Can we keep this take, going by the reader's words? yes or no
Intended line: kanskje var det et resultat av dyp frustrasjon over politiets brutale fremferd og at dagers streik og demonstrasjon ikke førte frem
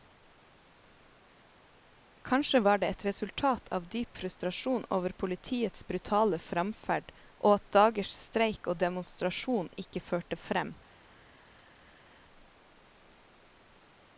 yes